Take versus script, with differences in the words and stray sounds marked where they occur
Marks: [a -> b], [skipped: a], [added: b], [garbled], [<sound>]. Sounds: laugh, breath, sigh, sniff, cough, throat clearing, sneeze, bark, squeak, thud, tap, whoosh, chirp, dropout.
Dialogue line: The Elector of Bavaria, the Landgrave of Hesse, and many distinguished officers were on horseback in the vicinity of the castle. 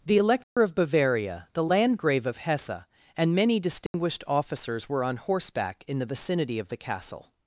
The Elector [dropout] of Bavaria, the Landgrave of Hesse, and many distinguished [dropout] officers were on horseback in the vicinity of the castle.